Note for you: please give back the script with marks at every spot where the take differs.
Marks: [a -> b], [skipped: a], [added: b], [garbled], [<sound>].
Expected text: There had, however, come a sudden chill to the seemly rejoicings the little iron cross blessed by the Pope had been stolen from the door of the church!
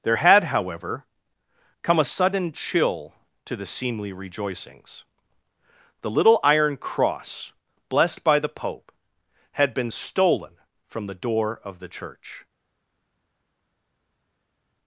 There had, however, come a sudden chill to the seemly rejoicings the little iron cross blessed by the Pope had been stolen from the door of the church!